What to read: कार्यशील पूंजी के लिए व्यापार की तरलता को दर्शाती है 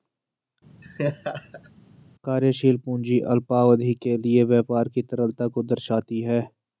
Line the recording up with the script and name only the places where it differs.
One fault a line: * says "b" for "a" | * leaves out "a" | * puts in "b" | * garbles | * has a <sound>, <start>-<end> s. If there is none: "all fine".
* has a laugh, 0.8-1.7 s
* puts in "अल्पावधि"